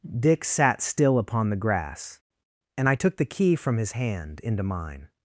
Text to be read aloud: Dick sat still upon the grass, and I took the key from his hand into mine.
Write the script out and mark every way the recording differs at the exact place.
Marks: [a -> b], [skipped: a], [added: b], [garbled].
Dick sat still upon the grass, and I took the key from his hand into mine.